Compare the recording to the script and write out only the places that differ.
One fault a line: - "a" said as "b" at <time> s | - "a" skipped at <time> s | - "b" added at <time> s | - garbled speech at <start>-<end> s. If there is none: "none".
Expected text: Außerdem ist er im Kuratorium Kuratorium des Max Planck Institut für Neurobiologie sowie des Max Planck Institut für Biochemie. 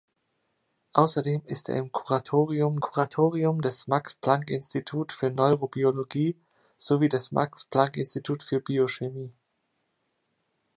none